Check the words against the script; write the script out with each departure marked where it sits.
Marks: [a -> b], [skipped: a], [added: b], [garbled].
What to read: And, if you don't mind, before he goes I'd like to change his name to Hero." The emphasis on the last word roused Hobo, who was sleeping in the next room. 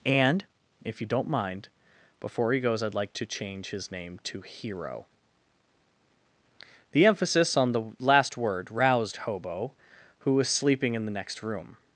And, if you don't mind, before he goes I'd like to change his name to Hero." The emphasis on the last word roused Hobo, who was sleeping in the next room.